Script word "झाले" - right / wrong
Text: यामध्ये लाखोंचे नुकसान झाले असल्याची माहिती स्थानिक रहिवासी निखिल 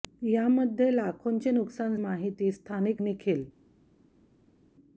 wrong